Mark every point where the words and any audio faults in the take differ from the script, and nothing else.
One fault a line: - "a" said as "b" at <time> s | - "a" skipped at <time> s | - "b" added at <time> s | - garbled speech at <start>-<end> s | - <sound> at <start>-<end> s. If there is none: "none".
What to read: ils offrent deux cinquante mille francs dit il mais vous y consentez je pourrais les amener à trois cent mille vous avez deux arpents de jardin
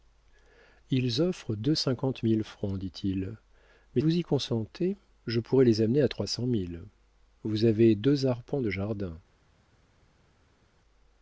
none